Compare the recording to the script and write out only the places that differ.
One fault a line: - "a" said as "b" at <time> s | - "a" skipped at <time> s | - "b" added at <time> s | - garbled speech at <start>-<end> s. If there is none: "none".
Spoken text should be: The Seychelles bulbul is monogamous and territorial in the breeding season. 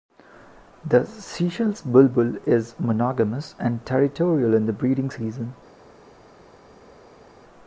none